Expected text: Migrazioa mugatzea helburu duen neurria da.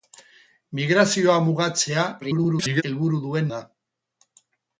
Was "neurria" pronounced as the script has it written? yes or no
no